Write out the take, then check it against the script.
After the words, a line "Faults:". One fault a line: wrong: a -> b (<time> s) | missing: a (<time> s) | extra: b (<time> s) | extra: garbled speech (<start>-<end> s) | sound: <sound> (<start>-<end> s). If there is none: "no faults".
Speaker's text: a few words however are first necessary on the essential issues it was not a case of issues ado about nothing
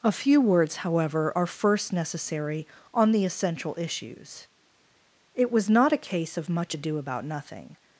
a few words however are first necessary on the essential issues it was not a case of much ado about nothing
Faults:
wrong: issues -> much (6.5 s)